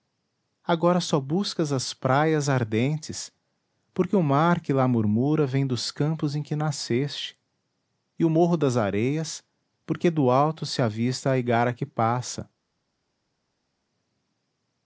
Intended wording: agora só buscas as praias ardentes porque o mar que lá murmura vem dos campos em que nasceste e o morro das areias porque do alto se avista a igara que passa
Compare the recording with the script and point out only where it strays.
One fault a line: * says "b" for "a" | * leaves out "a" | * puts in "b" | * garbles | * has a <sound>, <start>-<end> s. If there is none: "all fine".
all fine